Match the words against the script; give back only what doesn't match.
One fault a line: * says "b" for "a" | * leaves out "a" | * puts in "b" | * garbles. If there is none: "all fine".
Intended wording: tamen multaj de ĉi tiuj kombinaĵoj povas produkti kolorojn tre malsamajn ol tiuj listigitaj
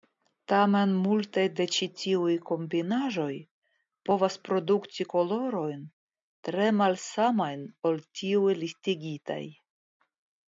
all fine